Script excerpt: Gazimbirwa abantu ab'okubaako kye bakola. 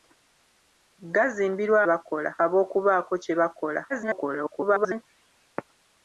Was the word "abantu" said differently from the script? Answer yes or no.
yes